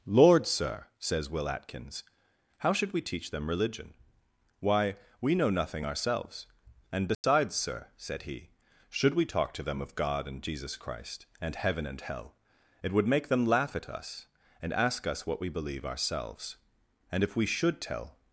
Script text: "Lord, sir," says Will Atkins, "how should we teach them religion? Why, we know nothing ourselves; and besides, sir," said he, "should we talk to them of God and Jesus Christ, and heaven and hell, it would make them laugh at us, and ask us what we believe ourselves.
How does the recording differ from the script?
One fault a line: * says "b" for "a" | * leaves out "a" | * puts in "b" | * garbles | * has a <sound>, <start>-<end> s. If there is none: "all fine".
* has a dropout, 7.1-7.2 s
* puts in "And if we should tell"